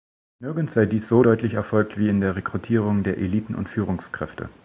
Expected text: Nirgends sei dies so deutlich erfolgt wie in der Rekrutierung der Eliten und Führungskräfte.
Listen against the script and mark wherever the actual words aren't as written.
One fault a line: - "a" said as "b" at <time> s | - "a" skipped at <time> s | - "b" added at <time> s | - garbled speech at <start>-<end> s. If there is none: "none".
none